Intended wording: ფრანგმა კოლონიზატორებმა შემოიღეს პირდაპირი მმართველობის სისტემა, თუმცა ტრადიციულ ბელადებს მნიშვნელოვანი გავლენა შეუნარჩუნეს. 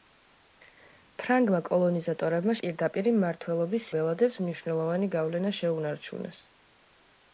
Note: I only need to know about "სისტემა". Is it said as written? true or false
false